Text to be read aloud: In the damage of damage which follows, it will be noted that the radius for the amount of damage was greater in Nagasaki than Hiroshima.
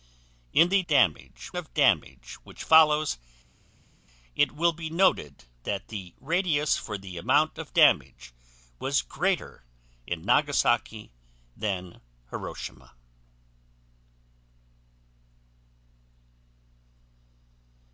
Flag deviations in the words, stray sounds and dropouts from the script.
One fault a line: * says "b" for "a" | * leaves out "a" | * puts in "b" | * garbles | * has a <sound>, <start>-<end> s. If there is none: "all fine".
all fine